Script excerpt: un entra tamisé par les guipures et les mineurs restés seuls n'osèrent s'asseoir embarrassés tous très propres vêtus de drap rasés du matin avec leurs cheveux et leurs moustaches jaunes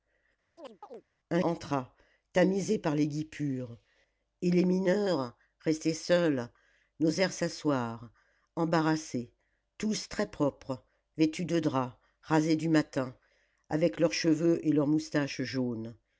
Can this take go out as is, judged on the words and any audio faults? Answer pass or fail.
fail